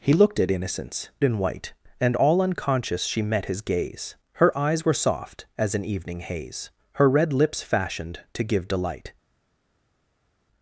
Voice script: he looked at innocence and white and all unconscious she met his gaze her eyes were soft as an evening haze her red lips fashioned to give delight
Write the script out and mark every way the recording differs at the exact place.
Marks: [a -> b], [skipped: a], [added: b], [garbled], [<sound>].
he looked at innocence and white and all unconscious she met his gaze her eyes were soft as an evening haze her red lips fashioned to give delight